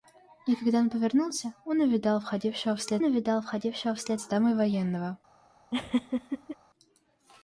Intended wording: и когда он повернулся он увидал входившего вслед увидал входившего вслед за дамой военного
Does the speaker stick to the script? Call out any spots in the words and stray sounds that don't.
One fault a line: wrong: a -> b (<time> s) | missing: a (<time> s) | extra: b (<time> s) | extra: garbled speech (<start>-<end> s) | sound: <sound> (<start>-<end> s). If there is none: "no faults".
sound: laugh (5.7-6.6 s)